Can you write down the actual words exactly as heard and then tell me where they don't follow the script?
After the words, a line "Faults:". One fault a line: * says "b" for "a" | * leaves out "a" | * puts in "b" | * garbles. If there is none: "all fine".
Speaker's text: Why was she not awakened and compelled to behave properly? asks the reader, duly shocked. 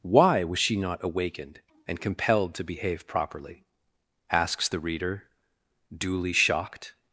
Why was she not awakened and compelled to behave properly? asks the reader, duly shocked.
Faults:
all fine